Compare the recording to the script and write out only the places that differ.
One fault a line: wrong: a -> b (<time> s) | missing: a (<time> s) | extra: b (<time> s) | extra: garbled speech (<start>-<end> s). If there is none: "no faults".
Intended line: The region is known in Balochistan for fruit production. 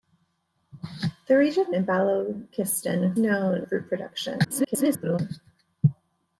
missing: is known (1.8 s)
wrong: for -> known (3.2 s)
extra: garbled speech (4.4-5.2 s)